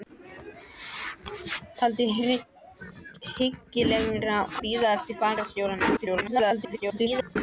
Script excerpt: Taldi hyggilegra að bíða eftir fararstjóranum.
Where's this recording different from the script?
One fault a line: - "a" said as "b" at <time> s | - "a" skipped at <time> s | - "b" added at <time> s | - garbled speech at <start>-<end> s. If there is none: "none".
- "að" skipped at 4.4 s
- garbled speech at 6.0-7.4 s